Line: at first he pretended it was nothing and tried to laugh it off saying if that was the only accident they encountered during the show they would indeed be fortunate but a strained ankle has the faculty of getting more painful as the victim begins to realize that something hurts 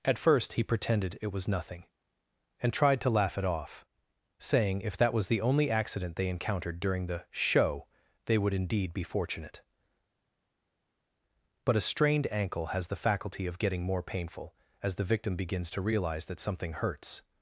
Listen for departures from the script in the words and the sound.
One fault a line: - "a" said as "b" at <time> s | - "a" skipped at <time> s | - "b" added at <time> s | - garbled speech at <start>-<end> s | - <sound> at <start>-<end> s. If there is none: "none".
none